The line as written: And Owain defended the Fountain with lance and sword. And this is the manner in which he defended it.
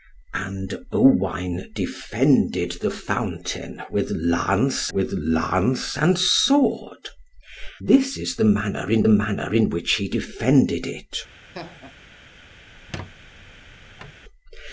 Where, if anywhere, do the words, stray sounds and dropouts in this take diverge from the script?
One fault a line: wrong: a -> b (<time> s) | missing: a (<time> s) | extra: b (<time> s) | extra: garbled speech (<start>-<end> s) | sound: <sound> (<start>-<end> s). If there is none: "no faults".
extra: with lance (4.9 s)
missing: And (7.1 s)
extra: manner in (9.1 s)
sound: laugh (11.5-12.0 s)
sound: squeak (12.7-14.2 s)